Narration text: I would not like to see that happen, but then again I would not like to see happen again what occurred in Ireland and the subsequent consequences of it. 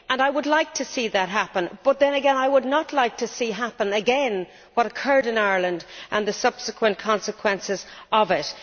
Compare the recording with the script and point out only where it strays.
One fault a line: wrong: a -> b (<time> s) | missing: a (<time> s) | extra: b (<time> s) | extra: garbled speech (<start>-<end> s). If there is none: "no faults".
missing: not (0.5 s)